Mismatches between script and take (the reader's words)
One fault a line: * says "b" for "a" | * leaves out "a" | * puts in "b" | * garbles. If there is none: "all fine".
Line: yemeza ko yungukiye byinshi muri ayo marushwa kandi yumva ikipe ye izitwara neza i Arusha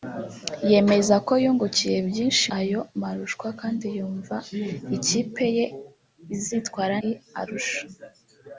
* leaves out "muri"
* leaves out "neza"